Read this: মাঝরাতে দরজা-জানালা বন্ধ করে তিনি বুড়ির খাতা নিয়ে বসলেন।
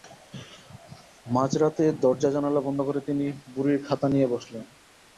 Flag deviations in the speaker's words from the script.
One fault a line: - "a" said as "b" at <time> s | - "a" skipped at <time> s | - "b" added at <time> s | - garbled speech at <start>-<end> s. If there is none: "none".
none